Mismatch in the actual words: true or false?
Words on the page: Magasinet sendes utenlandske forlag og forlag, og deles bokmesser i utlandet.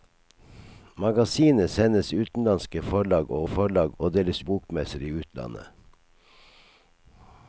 false